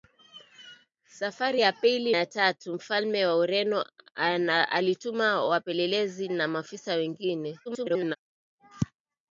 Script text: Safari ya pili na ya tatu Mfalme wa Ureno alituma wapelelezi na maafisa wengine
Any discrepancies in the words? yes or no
yes